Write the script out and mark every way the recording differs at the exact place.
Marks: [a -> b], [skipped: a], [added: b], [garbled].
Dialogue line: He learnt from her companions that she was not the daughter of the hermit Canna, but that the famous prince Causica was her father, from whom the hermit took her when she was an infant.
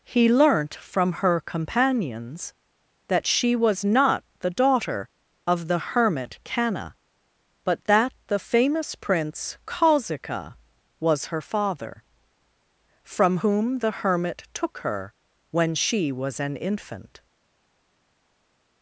He learnt from her companions that she was not the daughter of the hermit Canna, but that the famous prince Causica was her father, from whom the hermit took her when she was an infant.